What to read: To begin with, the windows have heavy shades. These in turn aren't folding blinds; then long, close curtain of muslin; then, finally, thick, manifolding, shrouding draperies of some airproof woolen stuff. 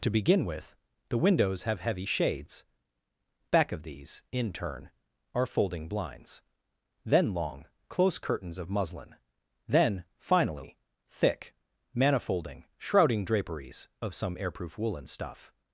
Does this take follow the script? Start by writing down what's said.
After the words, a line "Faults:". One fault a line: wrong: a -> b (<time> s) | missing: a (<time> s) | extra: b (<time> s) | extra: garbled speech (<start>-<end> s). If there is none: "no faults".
To begin with, the windows have heavy shades. Back of these in turn are folding blinds; then long, close curtains of muslin; then, finally, thick, manifolding, shrouding draperies of some airproof woolen stuff.
Faults:
extra: Back of (3.5 s)
wrong: aren't -> are (5.3 s)
wrong: curtain -> curtains (8.2 s)